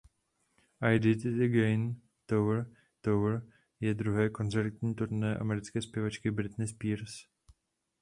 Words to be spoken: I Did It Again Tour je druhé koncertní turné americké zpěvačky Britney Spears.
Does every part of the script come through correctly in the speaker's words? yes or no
no